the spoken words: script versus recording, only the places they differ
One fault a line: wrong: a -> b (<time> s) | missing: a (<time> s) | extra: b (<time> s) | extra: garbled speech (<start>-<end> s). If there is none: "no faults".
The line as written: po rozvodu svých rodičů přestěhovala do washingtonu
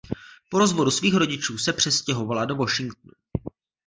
extra: se (1.6 s)